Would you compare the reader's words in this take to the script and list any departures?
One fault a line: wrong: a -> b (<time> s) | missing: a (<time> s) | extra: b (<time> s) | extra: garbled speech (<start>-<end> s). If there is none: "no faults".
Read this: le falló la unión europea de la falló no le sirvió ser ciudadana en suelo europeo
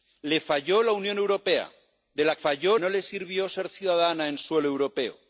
no faults